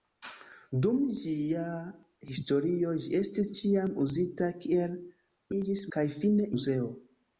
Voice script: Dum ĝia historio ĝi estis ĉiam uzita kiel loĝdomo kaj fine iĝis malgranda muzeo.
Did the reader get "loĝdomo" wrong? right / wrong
wrong